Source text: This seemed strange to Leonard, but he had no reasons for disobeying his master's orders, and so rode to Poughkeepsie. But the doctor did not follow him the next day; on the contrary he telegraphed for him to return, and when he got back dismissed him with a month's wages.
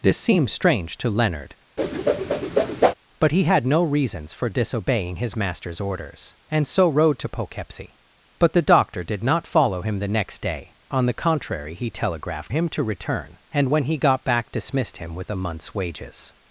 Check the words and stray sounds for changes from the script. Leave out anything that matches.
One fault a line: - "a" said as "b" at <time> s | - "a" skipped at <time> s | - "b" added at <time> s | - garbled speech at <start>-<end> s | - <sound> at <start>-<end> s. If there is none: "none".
- whoosh at 1.8-2.9 s
- "for" skipped at 12.5 s